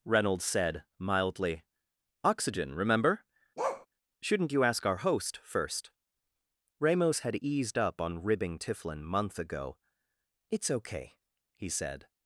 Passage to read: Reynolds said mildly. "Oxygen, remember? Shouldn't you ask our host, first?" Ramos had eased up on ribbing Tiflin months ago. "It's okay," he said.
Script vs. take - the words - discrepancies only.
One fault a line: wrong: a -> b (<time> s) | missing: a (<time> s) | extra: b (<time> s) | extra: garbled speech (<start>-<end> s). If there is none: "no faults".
wrong: months -> month (9.0 s)